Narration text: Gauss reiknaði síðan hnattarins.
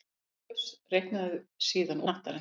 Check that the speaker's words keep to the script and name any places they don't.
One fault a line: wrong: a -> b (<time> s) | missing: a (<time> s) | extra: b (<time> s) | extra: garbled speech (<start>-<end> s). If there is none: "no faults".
no faults